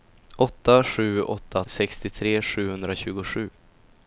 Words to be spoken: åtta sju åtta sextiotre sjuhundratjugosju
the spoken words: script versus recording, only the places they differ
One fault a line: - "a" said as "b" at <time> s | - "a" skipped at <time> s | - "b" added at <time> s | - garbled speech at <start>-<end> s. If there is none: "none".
none